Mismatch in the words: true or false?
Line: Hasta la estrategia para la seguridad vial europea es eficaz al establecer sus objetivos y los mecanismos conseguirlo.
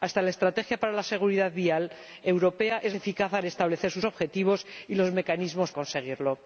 false